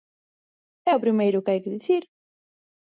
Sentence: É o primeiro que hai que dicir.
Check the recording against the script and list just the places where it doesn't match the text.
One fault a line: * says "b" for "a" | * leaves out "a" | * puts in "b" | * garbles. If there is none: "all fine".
all fine